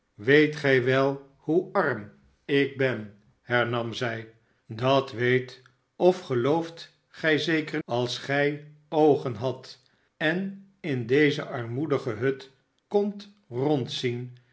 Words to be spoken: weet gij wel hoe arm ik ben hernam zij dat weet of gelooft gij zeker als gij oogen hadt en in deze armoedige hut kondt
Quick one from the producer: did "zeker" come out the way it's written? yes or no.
yes